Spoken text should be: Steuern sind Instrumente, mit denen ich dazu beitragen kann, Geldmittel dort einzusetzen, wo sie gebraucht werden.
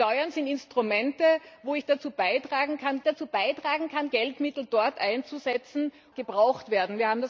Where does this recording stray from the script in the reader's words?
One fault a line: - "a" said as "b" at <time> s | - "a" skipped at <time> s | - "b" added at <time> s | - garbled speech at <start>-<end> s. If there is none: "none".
- "dazu beitragen kann" added at 3.0 s
- "wo sie" skipped at 5.9 s